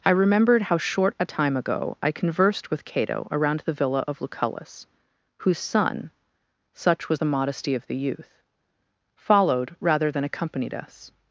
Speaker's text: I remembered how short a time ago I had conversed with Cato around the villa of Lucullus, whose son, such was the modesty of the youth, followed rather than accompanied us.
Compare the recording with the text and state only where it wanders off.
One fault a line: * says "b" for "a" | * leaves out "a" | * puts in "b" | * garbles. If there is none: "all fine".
* leaves out "had"